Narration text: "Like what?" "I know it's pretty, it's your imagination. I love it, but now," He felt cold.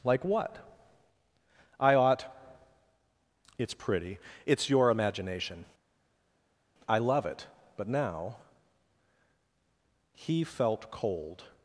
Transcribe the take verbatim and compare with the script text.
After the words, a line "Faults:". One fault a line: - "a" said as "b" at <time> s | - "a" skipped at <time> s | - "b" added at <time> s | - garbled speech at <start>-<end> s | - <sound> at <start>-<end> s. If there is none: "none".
"Like what?" "I ought it's pretty, it's your imagination. I love it, but now," He felt cold.
Faults:
- "know" said as "ought" at 1.9 s